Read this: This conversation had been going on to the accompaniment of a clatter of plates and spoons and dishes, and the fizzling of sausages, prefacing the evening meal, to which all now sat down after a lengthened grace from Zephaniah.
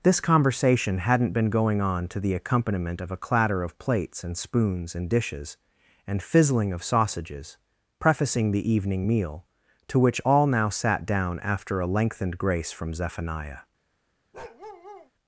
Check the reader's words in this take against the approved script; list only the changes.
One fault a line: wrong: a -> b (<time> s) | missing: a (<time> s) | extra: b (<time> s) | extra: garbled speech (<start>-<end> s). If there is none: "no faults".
wrong: had -> hadn't (1.0 s)
missing: the (6.2 s)